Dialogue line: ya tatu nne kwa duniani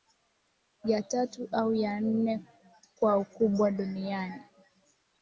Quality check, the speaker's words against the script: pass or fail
fail